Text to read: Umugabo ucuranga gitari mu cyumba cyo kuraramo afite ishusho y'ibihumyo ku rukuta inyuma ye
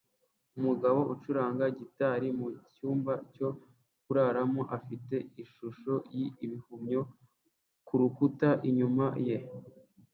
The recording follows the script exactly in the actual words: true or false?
true